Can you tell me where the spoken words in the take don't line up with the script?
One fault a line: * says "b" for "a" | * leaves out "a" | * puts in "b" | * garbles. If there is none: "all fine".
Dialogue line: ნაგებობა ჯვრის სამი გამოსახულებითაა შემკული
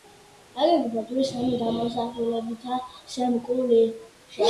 all fine